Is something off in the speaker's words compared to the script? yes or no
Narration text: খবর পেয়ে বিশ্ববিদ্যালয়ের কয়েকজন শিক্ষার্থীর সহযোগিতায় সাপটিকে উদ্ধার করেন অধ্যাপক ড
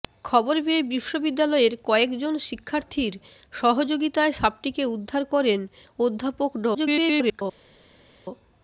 yes